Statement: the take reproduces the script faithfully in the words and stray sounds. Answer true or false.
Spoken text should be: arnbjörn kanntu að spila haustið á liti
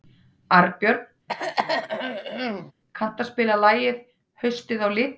false